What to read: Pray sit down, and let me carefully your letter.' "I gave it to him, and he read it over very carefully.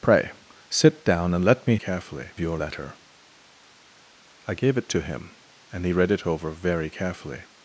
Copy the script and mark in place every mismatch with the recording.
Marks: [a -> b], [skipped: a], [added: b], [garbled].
Pray sit down, and let me carefully your letter.' "I gave it to him, and he read it over very carefully.